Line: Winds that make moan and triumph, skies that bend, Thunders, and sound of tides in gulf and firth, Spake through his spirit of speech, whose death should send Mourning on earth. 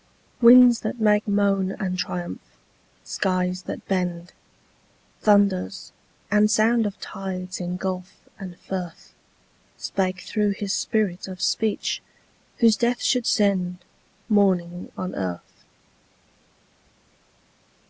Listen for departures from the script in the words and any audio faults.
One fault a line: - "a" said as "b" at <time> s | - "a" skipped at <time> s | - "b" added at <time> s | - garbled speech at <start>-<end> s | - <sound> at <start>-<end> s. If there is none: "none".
none